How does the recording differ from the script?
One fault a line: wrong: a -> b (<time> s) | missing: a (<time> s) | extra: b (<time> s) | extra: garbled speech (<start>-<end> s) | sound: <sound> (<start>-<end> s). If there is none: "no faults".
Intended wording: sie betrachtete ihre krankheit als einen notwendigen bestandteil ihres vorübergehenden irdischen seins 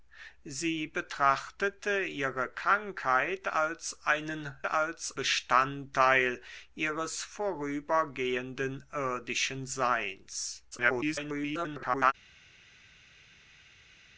wrong: notwendigen -> als (4.7 s)
extra: garbled speech (10.7-12.1 s)